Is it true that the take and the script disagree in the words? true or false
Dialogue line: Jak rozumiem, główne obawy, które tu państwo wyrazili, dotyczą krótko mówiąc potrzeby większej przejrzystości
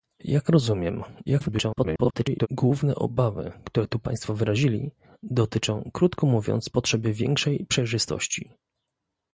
true